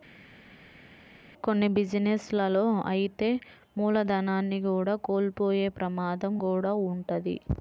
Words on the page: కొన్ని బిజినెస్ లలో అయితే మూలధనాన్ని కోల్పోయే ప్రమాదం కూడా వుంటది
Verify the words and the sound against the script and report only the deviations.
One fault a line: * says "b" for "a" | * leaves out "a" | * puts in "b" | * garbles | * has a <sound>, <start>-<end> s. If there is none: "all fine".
* puts in "కూడా"